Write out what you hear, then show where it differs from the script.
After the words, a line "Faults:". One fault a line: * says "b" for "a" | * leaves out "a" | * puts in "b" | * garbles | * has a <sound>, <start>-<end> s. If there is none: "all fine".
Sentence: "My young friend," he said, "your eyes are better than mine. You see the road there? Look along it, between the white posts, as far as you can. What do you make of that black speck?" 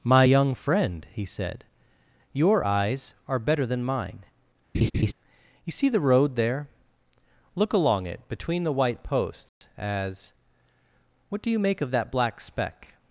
"My young friend," he said, "your eyes are better than mine. You see the road there? Look along it, between the white posts, as. What do you make of that black speck?"
Faults:
* has a laugh, 4.7-5.1 s
* has a dropout, 9.5-9.6 s
* leaves out "far as you can"